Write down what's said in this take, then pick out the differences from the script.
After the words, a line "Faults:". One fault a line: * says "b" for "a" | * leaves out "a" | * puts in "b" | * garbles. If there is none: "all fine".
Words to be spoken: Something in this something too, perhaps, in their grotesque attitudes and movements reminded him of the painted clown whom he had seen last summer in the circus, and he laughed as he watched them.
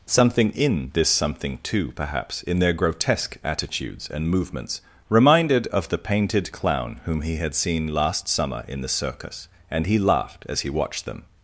Something in this something too, perhaps, in their grotesque attitudes and movements reminded of the painted clown whom he had seen last summer in the circus, and he laughed as he watched them.
Faults:
* leaves out "him"